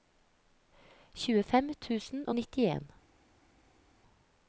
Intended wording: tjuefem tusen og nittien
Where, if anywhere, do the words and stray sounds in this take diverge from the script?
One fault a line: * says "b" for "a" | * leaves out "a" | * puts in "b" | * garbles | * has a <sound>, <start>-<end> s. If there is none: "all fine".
all fine